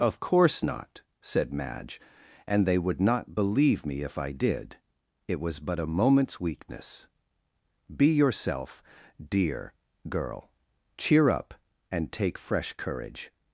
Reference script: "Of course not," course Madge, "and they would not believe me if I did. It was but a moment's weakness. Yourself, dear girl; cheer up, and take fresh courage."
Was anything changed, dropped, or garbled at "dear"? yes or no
no